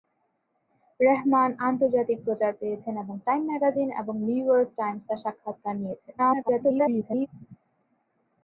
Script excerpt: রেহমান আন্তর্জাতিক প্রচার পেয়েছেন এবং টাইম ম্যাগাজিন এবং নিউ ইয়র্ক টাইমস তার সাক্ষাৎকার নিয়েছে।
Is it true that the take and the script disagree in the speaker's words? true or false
true